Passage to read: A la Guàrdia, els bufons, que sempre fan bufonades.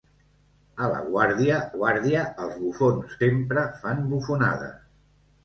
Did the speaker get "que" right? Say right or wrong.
wrong